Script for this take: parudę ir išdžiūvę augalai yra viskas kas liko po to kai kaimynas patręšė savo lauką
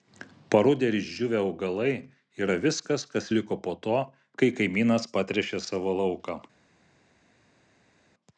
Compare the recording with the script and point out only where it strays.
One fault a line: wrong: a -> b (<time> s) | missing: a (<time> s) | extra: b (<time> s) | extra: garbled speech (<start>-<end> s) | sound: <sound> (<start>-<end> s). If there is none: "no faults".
no faults